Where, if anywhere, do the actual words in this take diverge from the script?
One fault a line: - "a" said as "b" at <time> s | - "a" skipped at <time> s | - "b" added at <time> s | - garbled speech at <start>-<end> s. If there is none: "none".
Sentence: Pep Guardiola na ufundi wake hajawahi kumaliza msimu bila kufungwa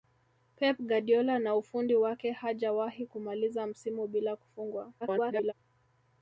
- garbled speech at 5.0-5.5 s